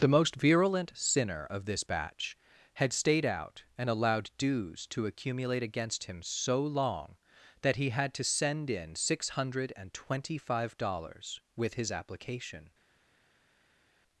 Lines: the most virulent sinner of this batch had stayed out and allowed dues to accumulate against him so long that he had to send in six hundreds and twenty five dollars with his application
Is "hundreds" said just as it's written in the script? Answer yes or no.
no